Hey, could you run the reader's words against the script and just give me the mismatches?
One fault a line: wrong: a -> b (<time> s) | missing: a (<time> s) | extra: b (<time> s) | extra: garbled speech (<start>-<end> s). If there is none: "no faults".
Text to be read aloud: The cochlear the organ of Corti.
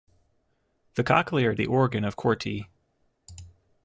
no faults